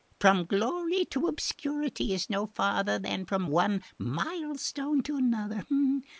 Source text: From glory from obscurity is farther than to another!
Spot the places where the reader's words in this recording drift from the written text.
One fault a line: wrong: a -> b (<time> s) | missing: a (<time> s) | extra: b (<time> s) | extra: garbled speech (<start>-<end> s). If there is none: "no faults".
wrong: from -> to (1.1 s)
extra: no (2.3 s)
extra: from one milestone (3.3 s)